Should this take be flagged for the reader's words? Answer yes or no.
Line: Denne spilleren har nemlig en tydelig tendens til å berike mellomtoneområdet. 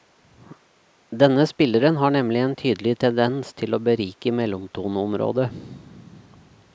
no